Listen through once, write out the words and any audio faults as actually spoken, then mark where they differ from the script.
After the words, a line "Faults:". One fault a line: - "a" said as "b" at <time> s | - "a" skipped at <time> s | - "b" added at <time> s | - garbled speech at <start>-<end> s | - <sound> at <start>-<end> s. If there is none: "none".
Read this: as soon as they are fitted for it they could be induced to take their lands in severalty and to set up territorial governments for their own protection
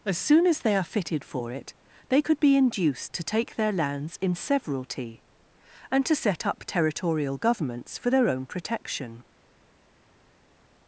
as soon as they are fitted for it they could be induced to take their lands in severalty and to set up territorial governments for their own protection
Faults:
none